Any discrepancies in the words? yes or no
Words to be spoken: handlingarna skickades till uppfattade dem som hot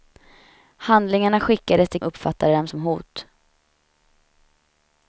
no